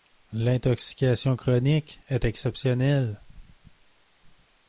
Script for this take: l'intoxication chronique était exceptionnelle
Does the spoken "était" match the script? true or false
false